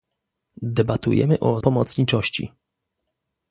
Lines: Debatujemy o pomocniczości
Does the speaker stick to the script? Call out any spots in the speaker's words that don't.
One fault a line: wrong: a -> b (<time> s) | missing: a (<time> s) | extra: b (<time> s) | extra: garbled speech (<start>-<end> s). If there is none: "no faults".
no faults